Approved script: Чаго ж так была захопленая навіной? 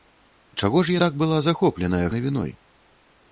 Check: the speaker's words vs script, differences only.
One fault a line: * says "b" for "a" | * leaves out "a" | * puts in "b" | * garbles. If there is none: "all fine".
all fine